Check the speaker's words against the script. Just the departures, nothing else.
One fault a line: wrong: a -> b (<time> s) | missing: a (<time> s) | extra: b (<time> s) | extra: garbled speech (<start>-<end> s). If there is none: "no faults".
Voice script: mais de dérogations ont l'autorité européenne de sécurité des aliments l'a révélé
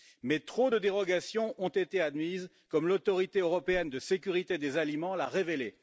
extra: trop (0.4 s)
extra: été admises comme (1.7 s)